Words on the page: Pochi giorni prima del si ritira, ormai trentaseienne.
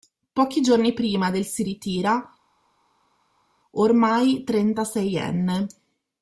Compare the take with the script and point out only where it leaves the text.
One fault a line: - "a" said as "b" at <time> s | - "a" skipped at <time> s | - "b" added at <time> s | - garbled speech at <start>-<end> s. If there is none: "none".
none